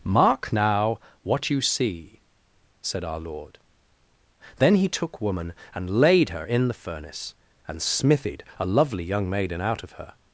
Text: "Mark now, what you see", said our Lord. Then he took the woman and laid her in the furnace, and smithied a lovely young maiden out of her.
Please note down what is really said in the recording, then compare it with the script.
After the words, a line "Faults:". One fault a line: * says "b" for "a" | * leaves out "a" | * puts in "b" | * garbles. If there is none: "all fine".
"Mark now, what you see", said our Lord. Then he took woman and laid her in the furnace, and smithied a lovely young maiden out of her.
Faults:
* leaves out "the"